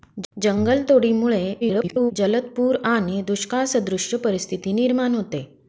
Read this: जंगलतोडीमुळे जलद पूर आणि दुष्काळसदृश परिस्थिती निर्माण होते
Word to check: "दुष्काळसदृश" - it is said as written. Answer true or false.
true